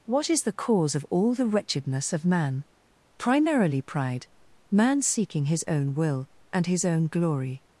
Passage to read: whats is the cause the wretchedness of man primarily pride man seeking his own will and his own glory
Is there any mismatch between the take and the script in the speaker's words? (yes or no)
yes